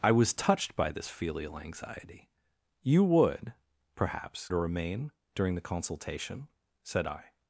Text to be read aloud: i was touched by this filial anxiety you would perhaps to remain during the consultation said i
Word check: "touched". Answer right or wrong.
right